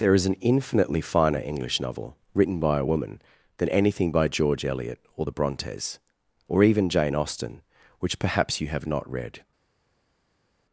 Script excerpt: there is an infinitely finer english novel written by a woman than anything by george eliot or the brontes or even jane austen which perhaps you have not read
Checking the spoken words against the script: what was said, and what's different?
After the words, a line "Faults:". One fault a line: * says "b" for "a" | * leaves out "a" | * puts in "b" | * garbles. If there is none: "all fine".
there is an infinitely finer english novel written by a woman than anything by george eliot or the brontes or even jane austen which perhaps you have not read
Faults:
all fine